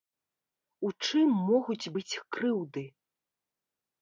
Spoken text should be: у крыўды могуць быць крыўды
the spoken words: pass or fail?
fail